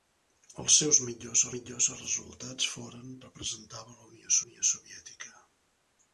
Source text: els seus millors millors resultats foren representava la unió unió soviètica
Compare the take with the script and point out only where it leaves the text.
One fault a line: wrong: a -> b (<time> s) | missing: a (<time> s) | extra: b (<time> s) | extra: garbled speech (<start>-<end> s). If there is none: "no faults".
no faults